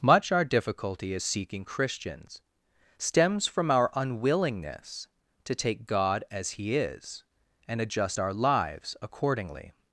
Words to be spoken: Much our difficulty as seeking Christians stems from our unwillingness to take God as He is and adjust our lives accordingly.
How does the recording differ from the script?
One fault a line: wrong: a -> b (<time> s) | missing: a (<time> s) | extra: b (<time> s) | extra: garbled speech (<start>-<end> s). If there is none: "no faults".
no faults